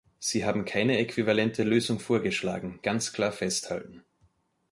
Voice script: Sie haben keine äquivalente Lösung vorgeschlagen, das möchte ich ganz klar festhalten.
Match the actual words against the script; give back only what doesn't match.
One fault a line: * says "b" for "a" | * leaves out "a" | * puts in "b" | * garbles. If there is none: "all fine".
* leaves out "das möchte ich"